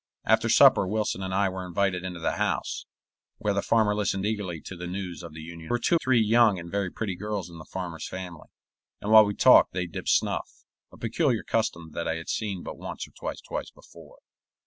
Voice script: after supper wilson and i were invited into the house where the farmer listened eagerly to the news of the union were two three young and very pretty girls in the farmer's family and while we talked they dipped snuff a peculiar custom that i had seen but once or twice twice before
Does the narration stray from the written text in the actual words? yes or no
no